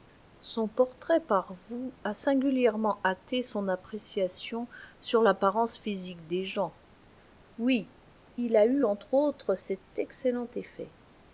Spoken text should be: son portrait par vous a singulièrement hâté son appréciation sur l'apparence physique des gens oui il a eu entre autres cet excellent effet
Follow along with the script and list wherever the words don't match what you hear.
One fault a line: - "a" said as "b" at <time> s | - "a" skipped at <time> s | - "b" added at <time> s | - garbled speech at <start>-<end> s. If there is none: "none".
none